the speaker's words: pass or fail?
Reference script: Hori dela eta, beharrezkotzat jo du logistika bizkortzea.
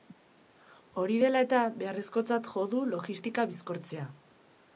pass